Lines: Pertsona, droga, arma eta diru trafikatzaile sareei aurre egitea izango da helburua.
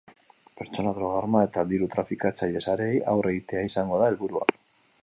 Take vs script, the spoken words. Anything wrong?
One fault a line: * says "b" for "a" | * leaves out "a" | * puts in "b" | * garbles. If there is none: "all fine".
all fine